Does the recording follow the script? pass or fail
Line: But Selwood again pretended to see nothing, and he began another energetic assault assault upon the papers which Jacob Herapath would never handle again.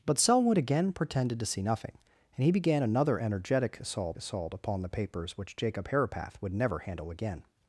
pass